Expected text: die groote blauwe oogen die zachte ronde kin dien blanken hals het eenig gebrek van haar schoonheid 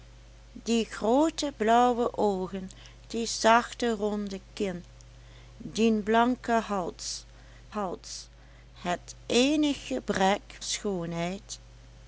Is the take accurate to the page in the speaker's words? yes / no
no